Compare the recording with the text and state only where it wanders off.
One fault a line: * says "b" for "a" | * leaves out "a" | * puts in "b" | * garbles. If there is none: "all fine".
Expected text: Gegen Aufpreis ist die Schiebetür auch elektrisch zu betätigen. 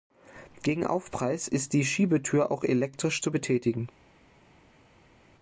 all fine